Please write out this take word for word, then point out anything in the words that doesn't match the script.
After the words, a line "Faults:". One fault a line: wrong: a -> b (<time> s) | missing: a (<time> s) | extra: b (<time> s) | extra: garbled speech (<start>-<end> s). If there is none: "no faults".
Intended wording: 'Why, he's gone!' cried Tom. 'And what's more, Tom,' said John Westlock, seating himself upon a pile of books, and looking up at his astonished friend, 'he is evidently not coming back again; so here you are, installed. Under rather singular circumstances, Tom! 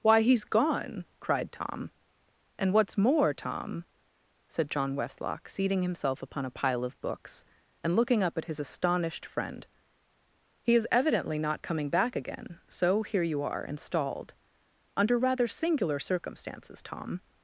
'Why, he's gone!' cried Tom. 'And what's more, Tom,' said John Westlock, seating himself upon a pile of books, and looking up at his astonished friend, 'he is evidently not coming back again; so here you are, installed. Under rather singular circumstances, Tom!
Faults:
no faults